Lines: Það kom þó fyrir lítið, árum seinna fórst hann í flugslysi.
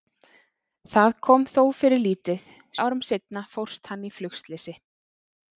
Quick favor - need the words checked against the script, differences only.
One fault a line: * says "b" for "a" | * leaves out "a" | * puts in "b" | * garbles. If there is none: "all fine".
all fine